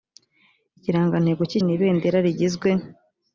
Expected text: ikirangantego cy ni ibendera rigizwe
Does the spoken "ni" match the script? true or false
true